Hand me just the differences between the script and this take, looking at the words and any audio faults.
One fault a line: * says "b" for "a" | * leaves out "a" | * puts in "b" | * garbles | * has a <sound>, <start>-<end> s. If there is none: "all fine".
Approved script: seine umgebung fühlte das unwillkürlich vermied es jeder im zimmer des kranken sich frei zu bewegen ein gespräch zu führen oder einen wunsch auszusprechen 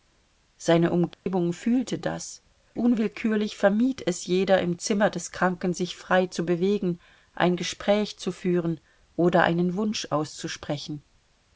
* has a dropout, 1.1-1.3 s